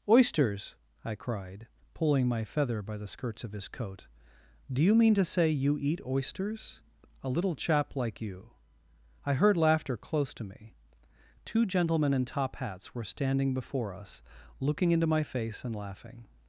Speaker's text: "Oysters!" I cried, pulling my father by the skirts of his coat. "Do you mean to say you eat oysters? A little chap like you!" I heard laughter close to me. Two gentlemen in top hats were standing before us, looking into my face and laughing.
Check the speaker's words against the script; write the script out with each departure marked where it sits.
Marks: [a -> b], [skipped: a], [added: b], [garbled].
"Oysters!" I cried, pulling my [father -> feather] by the skirts of his coat. "Do you mean to say you eat oysters? A little chap like you!" I heard laughter close to me. Two gentlemen in top hats were standing before us, looking into my face and laughing.